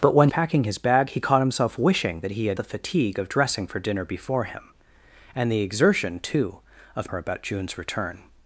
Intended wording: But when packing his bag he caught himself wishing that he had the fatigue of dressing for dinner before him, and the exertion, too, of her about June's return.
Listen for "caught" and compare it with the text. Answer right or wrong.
right